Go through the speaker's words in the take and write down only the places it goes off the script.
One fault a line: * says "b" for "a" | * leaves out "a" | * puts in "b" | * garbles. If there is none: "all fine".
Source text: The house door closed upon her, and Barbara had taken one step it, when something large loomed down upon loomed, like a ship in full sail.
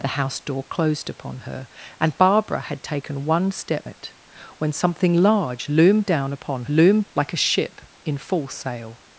all fine